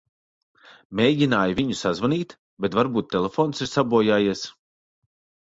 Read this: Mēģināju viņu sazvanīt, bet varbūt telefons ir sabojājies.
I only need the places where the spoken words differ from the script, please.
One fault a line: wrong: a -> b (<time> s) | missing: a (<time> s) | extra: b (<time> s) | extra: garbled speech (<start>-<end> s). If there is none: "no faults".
no faults